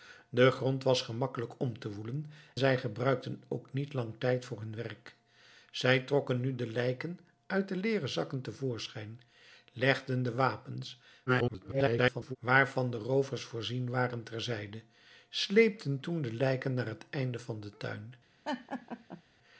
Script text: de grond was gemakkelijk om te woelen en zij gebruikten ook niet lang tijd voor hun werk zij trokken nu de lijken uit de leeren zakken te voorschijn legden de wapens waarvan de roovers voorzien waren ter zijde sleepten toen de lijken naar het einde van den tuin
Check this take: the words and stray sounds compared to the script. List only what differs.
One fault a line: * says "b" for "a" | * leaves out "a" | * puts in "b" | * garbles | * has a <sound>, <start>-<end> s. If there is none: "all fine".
* leaves out "en"
* garbles
* has a laugh, 18.4-19.2 s